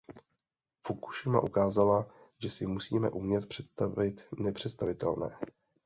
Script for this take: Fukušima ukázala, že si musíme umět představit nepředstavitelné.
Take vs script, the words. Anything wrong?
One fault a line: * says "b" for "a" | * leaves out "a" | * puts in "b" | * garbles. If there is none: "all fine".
all fine